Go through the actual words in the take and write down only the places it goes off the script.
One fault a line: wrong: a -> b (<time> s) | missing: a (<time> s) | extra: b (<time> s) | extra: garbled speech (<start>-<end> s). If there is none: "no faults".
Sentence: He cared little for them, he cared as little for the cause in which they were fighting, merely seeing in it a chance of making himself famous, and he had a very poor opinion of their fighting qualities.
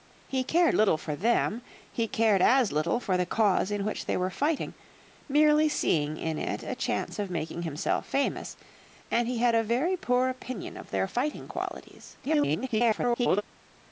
extra: garbled speech (12.2-13.4 s)